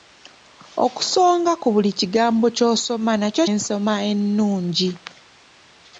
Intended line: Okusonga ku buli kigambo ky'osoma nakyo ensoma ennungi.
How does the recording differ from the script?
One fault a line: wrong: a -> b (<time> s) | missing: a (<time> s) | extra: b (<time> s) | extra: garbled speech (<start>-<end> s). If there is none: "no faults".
no faults